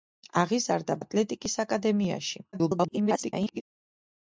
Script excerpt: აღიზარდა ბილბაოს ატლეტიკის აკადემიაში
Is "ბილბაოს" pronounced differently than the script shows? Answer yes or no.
yes